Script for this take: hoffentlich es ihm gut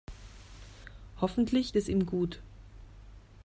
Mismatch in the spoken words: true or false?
false